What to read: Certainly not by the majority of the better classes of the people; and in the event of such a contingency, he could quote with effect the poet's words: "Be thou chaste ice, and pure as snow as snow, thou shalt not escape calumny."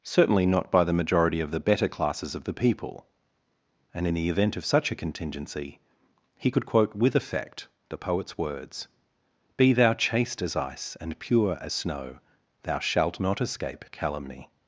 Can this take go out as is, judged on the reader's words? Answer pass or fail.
fail